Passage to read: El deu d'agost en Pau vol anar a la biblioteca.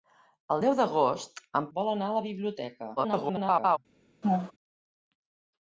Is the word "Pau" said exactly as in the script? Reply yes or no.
no